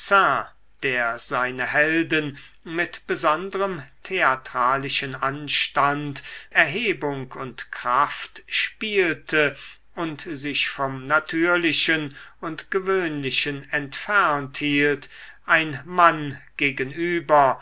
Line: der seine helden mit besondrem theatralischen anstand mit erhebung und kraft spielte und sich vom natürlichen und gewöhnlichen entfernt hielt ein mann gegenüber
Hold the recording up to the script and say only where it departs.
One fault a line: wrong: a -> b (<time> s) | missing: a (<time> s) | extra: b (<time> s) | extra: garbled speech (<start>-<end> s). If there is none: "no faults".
missing: mit (6.2 s)